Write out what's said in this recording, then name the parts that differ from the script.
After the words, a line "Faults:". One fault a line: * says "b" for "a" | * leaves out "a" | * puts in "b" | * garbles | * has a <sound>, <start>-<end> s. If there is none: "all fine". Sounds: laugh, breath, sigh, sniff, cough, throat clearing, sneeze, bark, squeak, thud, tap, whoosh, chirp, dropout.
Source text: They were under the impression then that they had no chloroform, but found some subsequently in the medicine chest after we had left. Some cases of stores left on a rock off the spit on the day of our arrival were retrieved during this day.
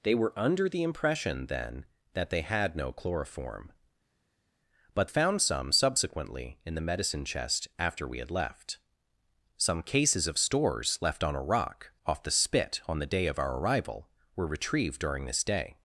They were under the impression then that they had no chloroform, but found some subsequently in the medicine chest after we had left. Some cases of stores left on a rock off the spit on the day of our arrival were retrieved during this day.
Faults:
all fine